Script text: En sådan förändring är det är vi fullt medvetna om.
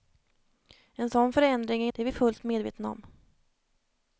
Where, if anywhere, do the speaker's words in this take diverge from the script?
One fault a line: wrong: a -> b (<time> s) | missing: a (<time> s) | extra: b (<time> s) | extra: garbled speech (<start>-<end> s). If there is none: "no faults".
no faults